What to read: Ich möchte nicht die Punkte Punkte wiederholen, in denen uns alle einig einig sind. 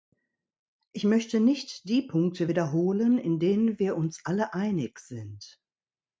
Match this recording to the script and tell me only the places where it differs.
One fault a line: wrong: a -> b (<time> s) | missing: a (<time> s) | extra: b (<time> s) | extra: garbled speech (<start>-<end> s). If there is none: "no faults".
missing: Punkte (2.5 s)
extra: wir (3.8 s)
missing: einig (5.0 s)